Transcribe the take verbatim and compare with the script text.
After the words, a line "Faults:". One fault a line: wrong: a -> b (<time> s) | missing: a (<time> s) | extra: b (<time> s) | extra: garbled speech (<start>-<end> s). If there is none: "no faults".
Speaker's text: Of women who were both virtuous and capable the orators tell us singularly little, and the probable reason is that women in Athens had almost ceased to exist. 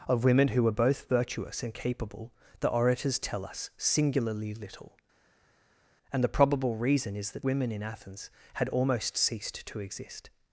Of women who were both virtuous and capable the orators tell us singularly little, and the probable reason is that women in Athens had almost ceased to exist.
Faults:
no faults